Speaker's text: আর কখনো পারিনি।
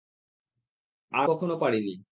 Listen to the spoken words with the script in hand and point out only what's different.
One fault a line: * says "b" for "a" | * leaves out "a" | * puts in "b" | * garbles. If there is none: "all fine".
all fine